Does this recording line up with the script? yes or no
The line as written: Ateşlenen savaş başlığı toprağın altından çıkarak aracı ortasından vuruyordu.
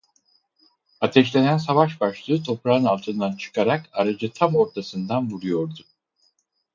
no